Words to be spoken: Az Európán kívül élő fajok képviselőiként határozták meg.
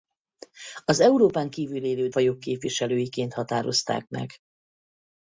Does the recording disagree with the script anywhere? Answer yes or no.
no